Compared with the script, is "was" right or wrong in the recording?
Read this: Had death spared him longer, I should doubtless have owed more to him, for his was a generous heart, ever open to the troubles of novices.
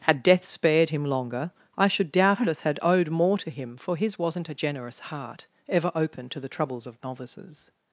wrong